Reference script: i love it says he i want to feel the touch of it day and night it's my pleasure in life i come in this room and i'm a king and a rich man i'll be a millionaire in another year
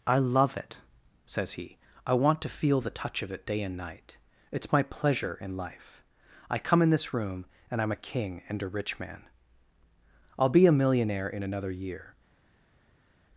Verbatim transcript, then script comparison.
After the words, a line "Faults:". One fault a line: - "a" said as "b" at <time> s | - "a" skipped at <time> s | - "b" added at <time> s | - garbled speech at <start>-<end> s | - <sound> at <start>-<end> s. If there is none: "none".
i love it says he i want to feel the touch of it day and night it's my pleasure in life i come in this room and i'm a king and a rich man i'll be a millionaire in another year
Faults:
none